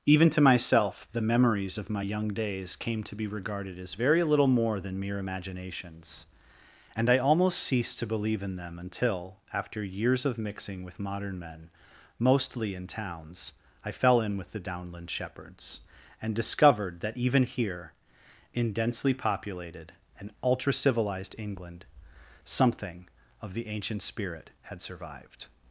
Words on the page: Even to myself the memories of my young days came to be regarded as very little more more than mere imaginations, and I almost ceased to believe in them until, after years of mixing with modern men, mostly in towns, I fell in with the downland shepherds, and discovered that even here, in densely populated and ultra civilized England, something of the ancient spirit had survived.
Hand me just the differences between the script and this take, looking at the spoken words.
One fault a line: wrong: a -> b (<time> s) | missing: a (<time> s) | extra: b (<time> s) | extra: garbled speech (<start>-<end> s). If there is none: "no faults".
missing: more (4.8 s)